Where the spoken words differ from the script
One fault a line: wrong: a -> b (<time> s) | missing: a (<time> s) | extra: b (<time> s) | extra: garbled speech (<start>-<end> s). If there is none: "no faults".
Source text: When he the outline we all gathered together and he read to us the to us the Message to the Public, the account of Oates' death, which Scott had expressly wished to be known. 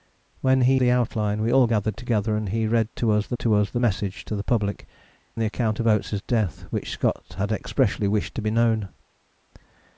no faults